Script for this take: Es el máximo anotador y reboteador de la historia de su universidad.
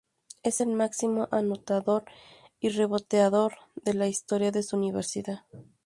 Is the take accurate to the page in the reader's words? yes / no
yes